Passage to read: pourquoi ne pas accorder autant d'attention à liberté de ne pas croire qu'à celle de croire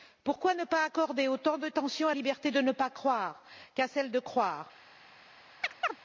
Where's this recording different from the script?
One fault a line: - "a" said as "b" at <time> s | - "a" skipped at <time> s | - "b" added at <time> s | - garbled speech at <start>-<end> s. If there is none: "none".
none